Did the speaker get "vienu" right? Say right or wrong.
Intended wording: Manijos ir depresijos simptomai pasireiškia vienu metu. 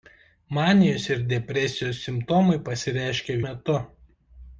wrong